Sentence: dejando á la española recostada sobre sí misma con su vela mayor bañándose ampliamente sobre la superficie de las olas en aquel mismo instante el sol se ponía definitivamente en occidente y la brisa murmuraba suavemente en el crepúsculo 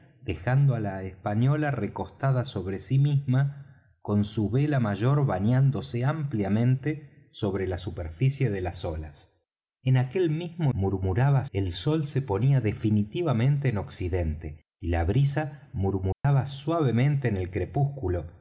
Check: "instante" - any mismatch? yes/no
yes